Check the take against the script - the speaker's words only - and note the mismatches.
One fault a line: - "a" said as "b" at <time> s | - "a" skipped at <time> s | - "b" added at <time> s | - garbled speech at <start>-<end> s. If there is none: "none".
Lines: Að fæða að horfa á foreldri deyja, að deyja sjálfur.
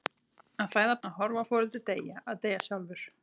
none